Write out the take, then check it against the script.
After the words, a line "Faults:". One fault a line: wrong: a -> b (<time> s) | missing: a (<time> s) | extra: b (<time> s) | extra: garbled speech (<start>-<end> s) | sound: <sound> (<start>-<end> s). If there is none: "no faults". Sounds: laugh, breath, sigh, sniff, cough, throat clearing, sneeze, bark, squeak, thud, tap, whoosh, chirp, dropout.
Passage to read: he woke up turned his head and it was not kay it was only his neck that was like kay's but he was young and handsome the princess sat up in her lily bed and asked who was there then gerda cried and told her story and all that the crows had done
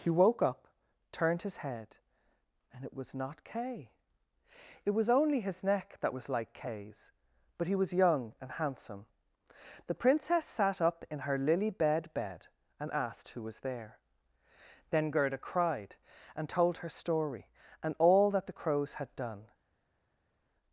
he woke up turned his head and it was not kay it was only his neck that was like kay's but he was young and handsome the princess sat up in her lily bed bed and asked who was there then gerda cried and told her story and all that the crows had done
Faults:
extra: bed (12.1 s)